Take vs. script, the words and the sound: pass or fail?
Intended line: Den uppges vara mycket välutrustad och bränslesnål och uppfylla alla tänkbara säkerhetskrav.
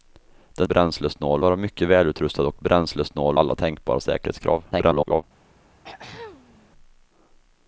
fail